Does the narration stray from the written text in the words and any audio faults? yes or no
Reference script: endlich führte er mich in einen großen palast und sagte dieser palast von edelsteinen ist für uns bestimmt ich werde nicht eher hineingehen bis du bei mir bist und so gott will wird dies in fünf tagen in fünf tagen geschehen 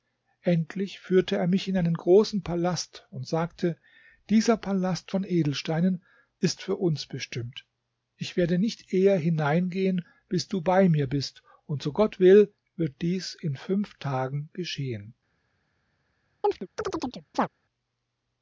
yes